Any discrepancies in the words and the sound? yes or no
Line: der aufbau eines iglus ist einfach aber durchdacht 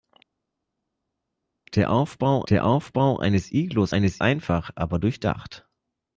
yes